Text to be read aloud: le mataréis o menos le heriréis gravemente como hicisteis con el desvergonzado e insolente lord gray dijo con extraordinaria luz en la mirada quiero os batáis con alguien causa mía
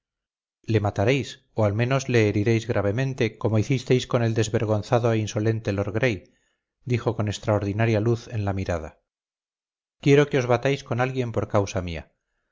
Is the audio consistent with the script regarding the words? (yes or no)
no